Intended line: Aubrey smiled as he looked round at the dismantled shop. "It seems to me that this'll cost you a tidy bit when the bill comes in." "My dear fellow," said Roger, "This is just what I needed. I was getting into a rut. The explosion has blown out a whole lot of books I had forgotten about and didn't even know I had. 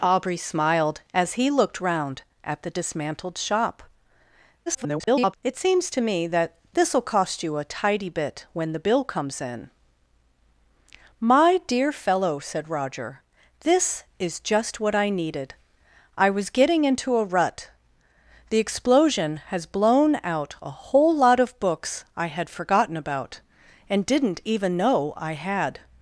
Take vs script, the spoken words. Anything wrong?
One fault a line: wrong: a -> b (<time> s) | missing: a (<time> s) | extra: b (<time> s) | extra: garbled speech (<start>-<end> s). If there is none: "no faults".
extra: garbled speech (4.7-5.3 s)